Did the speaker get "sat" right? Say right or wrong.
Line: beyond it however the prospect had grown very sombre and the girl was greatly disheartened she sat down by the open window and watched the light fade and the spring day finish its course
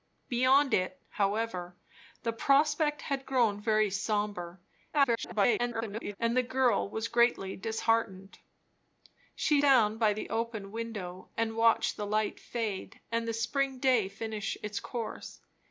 wrong